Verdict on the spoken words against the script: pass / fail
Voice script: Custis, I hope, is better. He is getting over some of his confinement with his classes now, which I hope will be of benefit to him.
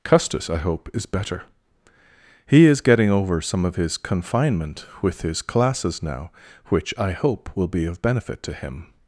pass